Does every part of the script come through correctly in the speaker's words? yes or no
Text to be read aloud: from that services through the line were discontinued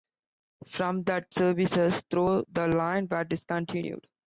yes